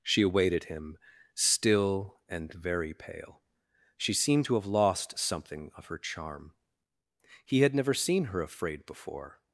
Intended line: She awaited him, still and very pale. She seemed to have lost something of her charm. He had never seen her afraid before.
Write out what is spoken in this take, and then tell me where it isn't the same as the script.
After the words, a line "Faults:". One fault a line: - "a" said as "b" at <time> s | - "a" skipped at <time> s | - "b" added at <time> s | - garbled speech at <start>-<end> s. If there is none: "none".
She awaited him, still and very pale. She seemed to have lost something of her charm. He had never seen her afraid before.
Faults:
none